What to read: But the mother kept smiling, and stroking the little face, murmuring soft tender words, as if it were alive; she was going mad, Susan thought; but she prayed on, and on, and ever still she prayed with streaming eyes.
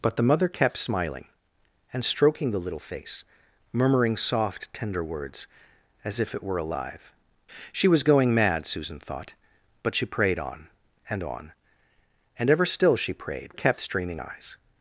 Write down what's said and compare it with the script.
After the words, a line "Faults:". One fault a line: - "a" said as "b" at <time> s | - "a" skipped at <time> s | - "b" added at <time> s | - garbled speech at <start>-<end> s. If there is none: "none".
But the mother kept smiling, and stroking the little face, murmuring soft tender words, as if it were alive; she was going mad, Susan thought; but she prayed on, and on, and ever still she prayed kept streaming eyes.
Faults:
- "with" said as "kept" at 13.5 s